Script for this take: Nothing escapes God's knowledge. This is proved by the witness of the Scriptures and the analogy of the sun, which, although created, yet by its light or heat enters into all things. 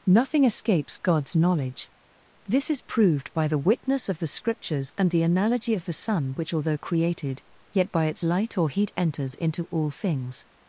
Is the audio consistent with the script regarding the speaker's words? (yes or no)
yes